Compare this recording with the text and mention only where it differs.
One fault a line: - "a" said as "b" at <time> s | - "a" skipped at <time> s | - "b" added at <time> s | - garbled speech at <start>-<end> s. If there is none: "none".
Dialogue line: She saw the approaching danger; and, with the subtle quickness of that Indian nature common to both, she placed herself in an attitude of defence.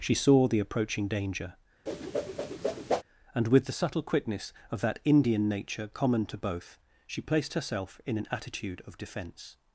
none